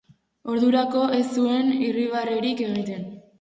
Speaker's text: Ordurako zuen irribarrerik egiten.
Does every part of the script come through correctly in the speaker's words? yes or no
no